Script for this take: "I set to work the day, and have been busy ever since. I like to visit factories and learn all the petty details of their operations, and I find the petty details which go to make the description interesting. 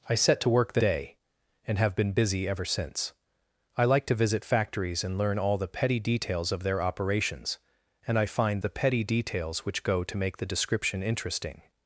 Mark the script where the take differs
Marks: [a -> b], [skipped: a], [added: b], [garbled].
"I set to work the day, and have been busy ever since. I like to visit factories and learn all the petty details of their operations, and I find the petty details which go to make the description interesting.